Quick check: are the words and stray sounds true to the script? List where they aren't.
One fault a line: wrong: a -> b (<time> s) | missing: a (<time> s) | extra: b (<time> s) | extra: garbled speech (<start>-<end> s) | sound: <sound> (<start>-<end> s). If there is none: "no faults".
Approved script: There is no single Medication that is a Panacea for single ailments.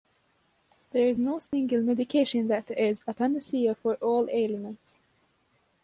sound: dropout (1.5-1.5 s)
wrong: single -> all (4.0 s)